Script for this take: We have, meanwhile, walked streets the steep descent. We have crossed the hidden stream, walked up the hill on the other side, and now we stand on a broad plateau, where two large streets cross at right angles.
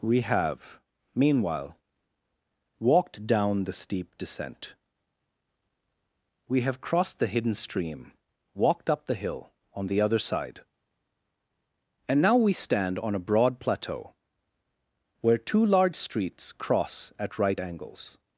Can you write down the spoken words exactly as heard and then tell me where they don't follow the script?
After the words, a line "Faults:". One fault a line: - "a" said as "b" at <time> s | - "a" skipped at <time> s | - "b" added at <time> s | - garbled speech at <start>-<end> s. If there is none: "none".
We have, meanwhile, walked down the steep descent. We have crossed the hidden stream, walked up the hill on the other side, and now we stand on a broad plateau, where two large streets cross at right angles.
Faults:
- "streets" said as "down" at 3.3 s